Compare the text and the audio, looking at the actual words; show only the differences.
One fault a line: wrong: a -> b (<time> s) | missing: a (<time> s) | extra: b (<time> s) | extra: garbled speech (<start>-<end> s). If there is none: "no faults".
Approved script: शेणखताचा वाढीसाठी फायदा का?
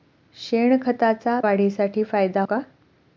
no faults